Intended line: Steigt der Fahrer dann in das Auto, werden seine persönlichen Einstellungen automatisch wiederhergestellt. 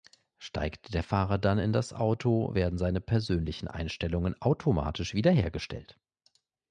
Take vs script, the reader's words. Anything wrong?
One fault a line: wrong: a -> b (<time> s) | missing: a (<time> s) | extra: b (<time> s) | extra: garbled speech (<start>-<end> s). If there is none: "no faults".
no faults